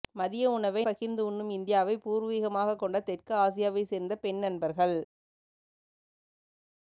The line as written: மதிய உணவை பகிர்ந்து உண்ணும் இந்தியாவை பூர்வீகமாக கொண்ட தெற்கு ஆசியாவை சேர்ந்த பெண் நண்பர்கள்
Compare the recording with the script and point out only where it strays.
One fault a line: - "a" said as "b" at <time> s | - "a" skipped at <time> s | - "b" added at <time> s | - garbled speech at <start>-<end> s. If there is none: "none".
none